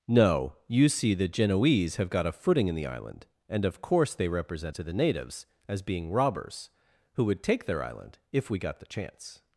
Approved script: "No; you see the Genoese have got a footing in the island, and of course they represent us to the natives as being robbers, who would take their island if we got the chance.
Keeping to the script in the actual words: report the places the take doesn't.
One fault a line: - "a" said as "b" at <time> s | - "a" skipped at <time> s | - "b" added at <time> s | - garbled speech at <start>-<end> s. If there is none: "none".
- "us" skipped at 4.8 s